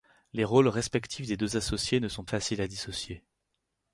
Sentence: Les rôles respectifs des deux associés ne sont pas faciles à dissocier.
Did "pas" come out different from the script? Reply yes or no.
yes